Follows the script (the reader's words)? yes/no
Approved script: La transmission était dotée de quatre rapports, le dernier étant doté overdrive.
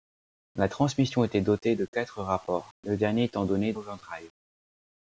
yes